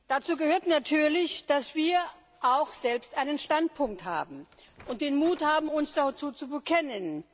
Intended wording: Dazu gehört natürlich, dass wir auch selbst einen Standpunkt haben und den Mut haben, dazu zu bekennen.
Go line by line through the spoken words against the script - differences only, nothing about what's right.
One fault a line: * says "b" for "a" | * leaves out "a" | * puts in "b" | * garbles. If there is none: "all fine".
* puts in "uns"